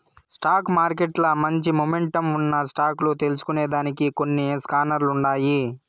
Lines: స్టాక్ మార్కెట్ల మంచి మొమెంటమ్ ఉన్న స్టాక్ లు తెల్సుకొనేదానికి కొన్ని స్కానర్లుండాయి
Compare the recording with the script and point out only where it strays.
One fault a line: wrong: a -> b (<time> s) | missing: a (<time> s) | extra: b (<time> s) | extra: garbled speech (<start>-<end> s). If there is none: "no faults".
no faults